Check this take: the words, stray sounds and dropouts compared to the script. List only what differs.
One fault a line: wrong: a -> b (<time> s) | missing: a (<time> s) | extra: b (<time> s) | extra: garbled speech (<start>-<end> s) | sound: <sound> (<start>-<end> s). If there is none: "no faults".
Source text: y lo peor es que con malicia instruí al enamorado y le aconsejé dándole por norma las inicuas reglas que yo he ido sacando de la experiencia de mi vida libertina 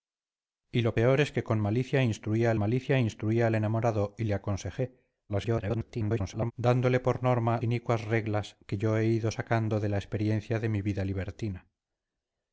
extra: malicia instruí al (2.5 s)
extra: garbled speech (5.3-6.5 s)
missing: las (7.6 s)